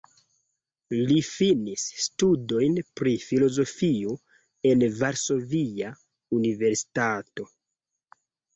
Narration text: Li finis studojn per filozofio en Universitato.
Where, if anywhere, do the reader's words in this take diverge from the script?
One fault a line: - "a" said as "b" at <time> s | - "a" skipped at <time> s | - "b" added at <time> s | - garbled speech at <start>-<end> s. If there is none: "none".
- "per" said as "pri" at 3.0 s
- "Varsovia" added at 5.0 s